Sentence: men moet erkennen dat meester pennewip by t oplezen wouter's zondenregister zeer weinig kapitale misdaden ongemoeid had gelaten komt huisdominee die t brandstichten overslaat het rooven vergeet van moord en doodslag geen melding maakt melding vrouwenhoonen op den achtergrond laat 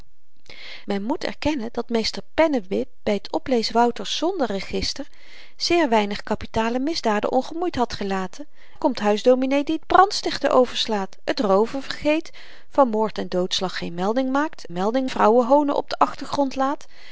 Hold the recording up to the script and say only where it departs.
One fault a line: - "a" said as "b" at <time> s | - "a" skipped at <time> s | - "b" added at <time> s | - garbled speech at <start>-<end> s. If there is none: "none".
none